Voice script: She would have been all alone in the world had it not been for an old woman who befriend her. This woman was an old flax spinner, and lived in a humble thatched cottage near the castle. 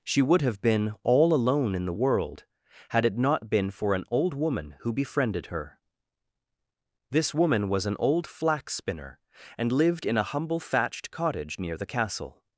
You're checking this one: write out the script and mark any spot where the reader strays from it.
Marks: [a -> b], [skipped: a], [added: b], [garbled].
She would have been all alone in the world had it not been for an old woman who [befriend -> befriended] her. This woman was an old flax spinner, and lived in a humble thatched cottage near the castle.